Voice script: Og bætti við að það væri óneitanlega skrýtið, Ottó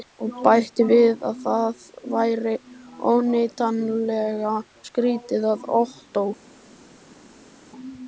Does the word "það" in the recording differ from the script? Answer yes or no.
no